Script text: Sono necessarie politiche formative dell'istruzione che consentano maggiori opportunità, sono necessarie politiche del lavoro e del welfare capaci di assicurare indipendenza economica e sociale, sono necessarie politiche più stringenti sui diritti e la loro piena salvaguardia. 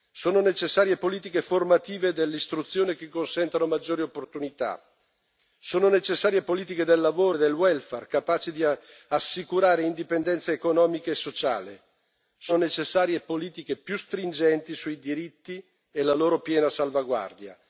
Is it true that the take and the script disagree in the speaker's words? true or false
false